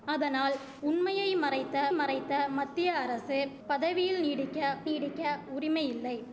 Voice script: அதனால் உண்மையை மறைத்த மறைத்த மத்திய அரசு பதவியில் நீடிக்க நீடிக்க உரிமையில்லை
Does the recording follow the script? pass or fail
pass